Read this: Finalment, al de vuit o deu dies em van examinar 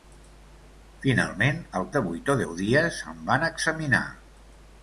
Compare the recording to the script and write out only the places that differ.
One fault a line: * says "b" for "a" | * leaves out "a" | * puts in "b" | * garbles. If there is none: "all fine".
all fine